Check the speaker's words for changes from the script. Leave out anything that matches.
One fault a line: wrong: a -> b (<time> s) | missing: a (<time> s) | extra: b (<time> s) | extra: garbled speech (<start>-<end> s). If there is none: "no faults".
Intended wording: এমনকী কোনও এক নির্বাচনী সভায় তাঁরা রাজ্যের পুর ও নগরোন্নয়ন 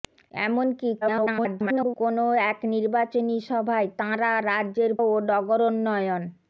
extra: garbled speech (1.0-2.0 s)
missing: পুর (4.9 s)